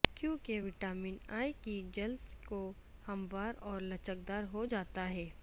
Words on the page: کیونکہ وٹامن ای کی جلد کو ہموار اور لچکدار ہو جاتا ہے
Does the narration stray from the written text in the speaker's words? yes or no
no